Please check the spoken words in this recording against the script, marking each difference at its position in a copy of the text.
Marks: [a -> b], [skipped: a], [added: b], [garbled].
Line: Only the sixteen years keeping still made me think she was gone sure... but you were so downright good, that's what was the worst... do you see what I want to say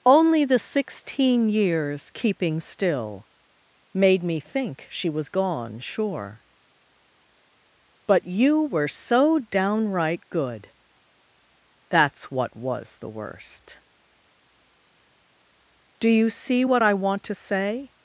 Only the sixteen years keeping still made me think she was gone sure... but you were so downright good, that's what was the worst... do you see what I want to say